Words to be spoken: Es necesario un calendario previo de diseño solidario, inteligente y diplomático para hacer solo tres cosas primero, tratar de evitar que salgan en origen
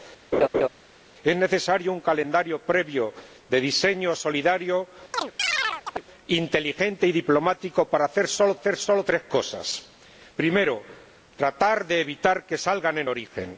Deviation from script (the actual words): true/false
true